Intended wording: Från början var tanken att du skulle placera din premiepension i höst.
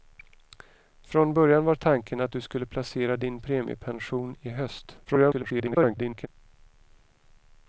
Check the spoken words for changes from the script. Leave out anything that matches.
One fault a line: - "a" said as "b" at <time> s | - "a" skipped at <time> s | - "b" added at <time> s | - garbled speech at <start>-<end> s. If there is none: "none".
- garbled speech at 5.0-6.3 s